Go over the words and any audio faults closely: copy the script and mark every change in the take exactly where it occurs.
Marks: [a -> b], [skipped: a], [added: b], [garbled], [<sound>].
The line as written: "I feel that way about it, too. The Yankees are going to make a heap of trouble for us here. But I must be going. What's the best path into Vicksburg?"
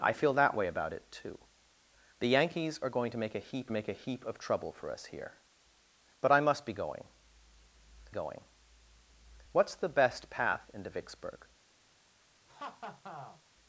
"I feel that way about it, too. The Yankees are going to make a heap [added: make a heap] of trouble for us here. But I must be going. [added: going] What's the best path into Vicksburg?" [laugh]